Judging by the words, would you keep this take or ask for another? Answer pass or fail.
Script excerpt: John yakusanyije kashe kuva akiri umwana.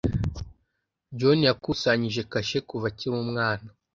pass